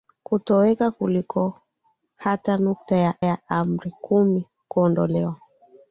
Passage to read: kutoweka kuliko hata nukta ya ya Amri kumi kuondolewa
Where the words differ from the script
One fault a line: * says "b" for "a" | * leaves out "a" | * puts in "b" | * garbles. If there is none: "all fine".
all fine